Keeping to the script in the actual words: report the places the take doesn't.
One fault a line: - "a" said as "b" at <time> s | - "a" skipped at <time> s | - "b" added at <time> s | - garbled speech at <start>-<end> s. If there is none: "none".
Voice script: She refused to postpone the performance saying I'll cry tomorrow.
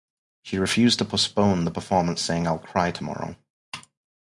none